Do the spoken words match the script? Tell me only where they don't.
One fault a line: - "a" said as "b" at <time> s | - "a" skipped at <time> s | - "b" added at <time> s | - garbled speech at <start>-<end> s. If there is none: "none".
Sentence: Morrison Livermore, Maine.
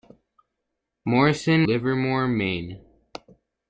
none